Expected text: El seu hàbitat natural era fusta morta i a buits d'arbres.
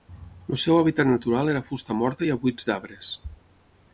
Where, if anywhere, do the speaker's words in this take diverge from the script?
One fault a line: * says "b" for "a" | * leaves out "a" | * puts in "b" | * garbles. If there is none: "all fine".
all fine